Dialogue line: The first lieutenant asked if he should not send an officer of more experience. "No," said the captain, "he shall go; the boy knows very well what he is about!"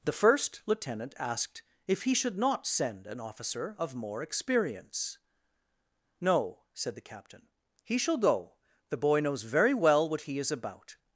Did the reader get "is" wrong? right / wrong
right